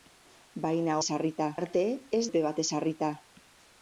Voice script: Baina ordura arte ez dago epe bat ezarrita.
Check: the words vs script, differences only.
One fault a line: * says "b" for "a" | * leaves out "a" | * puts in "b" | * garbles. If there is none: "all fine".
* says "ezarrita" for "ordura"
* leaves out "dago"